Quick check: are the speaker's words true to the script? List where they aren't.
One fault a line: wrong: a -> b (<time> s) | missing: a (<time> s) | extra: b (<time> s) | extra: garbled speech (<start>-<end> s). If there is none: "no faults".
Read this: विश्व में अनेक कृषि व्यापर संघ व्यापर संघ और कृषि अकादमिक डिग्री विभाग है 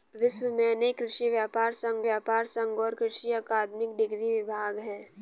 no faults